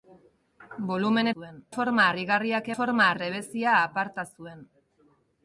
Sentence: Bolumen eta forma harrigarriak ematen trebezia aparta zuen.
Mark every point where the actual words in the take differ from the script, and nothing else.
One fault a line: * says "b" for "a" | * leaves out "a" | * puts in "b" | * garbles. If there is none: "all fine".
* says "zuen" for "eta"
* says "forma" for "ematen"